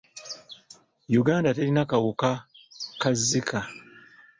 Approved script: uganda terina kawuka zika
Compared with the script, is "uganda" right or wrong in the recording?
right